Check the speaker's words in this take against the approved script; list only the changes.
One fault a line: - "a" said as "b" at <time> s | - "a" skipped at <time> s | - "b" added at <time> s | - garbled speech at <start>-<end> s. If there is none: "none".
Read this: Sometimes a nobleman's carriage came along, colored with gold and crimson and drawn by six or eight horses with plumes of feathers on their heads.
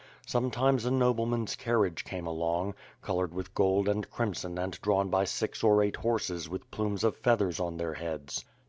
none